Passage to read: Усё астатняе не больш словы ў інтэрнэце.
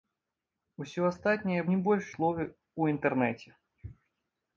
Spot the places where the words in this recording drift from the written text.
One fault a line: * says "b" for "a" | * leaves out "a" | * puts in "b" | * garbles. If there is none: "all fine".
all fine